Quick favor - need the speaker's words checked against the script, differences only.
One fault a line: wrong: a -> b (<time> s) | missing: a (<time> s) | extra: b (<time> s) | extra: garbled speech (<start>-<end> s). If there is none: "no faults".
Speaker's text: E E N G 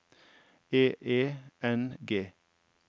no faults